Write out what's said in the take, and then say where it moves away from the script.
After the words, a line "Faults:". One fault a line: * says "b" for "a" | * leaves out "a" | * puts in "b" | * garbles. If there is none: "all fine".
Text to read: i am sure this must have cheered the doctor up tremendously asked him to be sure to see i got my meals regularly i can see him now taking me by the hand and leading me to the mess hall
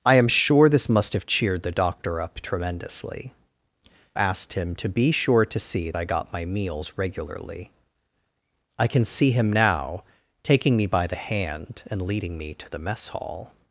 i am sure this must have cheered the doctor up tremendously asked him to be sure to see i got my meals regularly i can see him now taking me by the hand and leading me to the mess hall
Faults:
all fine